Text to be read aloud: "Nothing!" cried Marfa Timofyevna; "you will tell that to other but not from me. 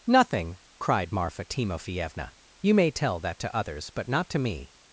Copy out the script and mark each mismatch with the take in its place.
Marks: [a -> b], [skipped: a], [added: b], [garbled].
"Nothing!" cried Marfa Timofyevna; "you [will -> may] tell that to [other -> others] but not [from -> to] me.